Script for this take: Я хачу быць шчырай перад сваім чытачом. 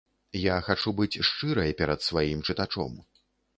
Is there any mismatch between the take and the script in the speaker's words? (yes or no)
no